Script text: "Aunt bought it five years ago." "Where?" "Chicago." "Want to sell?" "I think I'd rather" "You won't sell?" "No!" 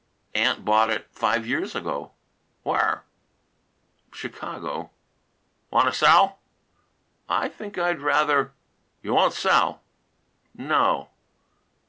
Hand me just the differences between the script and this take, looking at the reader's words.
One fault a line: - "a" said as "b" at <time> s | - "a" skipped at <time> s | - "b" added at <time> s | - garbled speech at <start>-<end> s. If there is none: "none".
none